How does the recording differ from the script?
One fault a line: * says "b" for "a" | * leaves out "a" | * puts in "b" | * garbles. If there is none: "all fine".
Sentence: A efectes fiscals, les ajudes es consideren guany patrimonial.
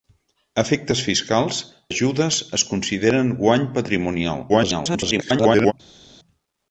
* leaves out "les"
* garbles